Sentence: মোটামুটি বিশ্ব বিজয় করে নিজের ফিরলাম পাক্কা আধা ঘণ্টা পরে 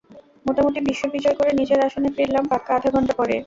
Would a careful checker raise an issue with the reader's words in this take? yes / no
yes